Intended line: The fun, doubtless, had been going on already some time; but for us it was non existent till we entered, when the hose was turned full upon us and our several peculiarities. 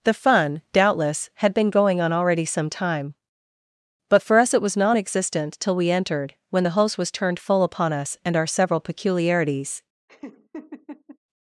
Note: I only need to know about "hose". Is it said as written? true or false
false